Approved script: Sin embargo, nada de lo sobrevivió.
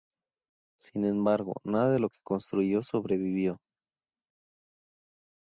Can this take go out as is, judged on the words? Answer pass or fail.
fail